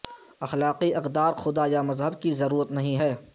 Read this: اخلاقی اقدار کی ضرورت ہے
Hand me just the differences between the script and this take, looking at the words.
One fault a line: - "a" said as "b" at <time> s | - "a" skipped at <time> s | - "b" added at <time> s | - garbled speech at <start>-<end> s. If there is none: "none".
- "خدا یا مذہب" added at 1.3 s
- "نہیں" added at 2.7 s